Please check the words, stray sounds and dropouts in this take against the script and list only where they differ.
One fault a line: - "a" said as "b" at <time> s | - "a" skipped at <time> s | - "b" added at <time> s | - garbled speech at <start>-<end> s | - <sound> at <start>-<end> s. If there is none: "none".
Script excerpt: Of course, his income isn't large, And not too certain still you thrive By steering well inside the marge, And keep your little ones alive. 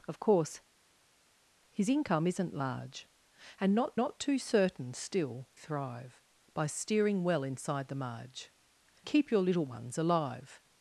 - "not" added at 4.0 s
- "you" skipped at 5.5 s
- "And" skipped at 8.5 s